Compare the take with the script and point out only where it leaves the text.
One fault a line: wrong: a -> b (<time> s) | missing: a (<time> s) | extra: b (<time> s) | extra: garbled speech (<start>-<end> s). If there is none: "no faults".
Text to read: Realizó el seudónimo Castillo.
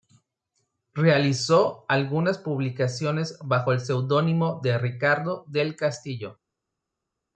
extra: algunas publicaciones bajo (1.9 s)
extra: de Ricardo del (4.6 s)